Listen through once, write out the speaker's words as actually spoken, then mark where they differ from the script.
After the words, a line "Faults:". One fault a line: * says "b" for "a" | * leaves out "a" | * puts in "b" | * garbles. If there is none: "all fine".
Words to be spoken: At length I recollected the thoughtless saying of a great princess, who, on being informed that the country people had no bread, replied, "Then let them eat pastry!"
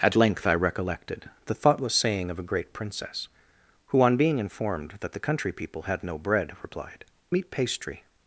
At length I recollected the thoughtless saying of a great princess, who, on being informed that the country people had no bread, replied, "Eat pastry!"
Faults:
* leaves out "Then let them"